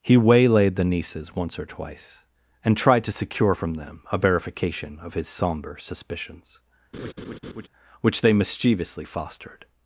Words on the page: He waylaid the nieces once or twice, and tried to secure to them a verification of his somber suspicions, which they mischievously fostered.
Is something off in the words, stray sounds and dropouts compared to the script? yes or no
yes